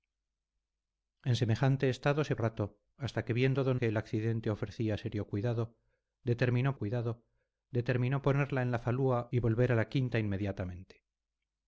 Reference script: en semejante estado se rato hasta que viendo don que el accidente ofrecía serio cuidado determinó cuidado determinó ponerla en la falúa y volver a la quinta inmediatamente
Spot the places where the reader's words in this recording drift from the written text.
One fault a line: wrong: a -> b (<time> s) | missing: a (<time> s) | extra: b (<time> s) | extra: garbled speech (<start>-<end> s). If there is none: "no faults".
no faults